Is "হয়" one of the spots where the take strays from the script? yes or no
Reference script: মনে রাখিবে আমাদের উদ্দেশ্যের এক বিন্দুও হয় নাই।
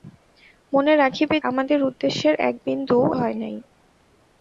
no